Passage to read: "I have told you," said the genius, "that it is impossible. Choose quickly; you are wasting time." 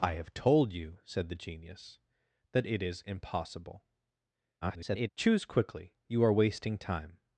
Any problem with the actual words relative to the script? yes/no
yes